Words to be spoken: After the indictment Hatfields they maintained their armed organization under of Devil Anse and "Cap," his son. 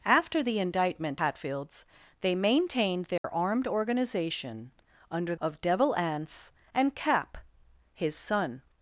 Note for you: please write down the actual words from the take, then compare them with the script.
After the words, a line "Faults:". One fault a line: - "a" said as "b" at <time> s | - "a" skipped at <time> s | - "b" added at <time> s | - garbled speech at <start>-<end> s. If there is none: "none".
After the indictment Hatfields they maintained their armed organization under of Devil Anse and "Cap," his son.
Faults:
none